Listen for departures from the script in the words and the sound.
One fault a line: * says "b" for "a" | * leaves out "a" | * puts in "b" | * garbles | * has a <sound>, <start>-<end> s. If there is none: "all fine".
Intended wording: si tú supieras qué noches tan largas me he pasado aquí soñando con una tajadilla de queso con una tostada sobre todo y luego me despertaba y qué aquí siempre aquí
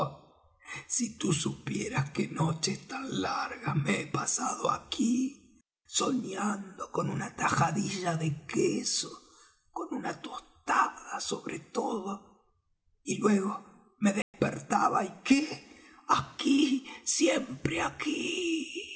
* has a dropout, 14.2-14.3 s